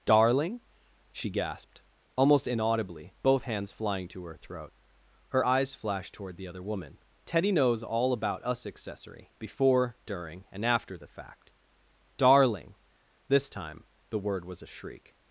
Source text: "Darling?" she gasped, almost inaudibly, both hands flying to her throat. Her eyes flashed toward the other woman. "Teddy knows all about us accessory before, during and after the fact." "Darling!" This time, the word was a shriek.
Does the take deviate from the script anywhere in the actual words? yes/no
no